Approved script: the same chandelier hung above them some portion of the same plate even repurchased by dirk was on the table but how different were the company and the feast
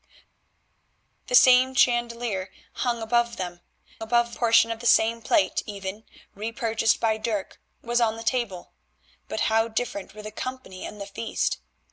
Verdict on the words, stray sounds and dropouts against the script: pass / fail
fail